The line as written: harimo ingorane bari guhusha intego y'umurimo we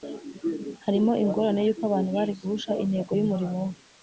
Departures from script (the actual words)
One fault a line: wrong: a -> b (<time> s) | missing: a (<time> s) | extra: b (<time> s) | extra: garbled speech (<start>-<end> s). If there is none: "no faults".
extra: y'uko abantu (1.6 s)